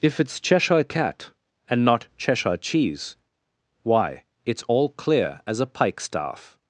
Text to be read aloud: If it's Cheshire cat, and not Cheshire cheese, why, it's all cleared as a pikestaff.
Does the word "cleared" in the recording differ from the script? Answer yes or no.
yes